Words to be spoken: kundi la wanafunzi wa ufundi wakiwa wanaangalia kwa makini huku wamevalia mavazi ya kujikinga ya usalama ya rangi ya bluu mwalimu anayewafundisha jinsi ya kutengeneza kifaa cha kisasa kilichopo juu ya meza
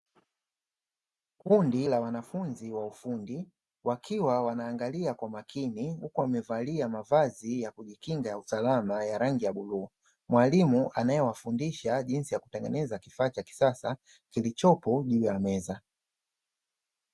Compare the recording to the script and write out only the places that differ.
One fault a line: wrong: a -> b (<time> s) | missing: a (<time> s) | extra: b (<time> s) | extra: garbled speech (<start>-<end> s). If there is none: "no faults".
no faults